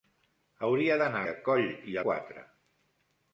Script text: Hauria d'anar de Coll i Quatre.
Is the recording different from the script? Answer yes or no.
no